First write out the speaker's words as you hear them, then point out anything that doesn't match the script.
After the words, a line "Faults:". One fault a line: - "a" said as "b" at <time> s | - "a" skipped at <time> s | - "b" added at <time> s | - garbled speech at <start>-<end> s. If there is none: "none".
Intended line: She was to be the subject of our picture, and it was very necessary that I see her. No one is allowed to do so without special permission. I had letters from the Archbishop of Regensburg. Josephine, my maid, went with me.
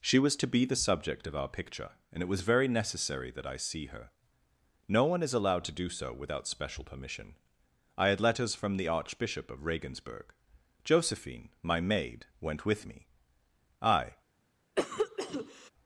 She was to be the subject of our picture, and it was very necessary that I see her. No one is allowed to do so without special permission. I had letters from the Archbishop of Regensburg. Josephine, my maid, went with me. "I
Faults:
- "I" added at 13.8 s